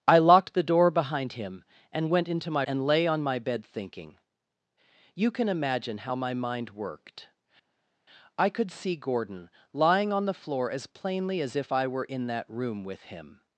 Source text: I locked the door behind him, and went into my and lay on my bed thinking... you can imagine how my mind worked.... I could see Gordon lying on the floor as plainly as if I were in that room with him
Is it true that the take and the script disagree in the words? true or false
false